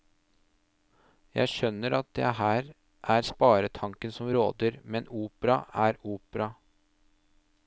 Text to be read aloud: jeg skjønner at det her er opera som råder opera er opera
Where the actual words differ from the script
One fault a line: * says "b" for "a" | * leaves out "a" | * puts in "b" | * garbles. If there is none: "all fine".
* says "sparetanken" for "opera"
* puts in "men"